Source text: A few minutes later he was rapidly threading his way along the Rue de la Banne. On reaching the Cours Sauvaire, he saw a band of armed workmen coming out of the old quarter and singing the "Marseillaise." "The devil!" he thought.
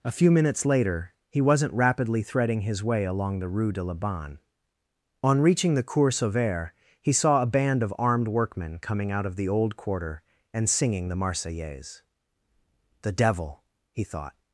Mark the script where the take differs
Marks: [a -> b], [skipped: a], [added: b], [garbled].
A few minutes later he [was -> wasn't] rapidly threading his way along the Rue de la Banne. On reaching the Cours Sauvaire, he saw a band of armed workmen coming out of the old quarter and singing the "Marseillaise." "The devil!" he thought.